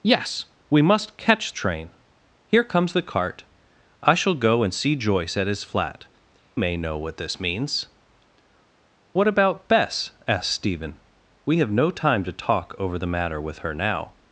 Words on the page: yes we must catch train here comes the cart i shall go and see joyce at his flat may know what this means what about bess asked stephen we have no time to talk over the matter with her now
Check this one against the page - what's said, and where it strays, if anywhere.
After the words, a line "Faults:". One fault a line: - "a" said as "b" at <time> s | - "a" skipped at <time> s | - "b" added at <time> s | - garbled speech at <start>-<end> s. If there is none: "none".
yes we must catch train here comes the cart i shall go and see joyce at his flat may know what this means what about bess asked stephen we have no time to talk over the matter with her now
Faults:
none